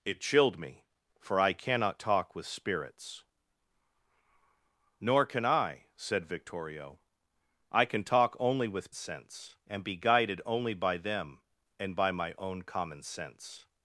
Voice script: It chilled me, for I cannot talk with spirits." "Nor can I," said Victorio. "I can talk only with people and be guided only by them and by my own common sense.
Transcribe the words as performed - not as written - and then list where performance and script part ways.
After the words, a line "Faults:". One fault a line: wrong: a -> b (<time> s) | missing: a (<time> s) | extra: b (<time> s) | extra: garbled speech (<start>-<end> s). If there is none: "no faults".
It chilled me, for I cannot talk with spirits." "Nor can I," said Victorio. "I can talk only with sense and be guided only by them and by my own common sense.
Faults:
wrong: people -> sense (8.9 s)